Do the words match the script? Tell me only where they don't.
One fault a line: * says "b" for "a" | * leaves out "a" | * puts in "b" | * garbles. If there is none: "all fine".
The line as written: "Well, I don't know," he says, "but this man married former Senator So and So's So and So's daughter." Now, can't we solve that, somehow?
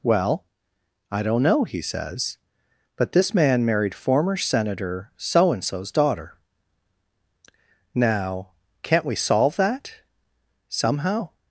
* leaves out "So and So's"